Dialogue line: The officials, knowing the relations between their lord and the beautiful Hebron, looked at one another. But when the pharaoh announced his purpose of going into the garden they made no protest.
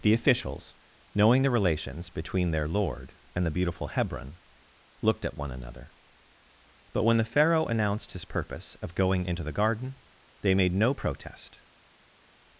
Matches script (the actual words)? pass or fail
pass